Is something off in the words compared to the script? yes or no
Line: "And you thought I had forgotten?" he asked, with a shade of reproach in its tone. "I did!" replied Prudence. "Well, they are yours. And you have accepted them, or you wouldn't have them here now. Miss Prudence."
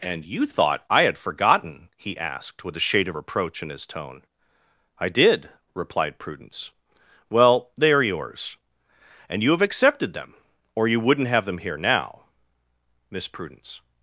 yes